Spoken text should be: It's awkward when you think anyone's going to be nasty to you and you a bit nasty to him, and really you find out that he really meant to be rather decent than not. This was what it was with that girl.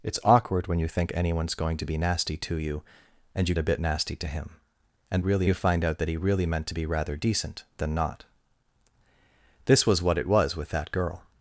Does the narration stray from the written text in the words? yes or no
no